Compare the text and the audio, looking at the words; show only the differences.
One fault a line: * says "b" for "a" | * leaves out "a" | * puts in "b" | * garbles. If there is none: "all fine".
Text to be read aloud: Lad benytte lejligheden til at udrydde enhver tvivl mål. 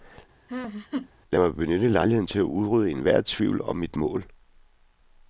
* puts in "mig"
* puts in "om mit"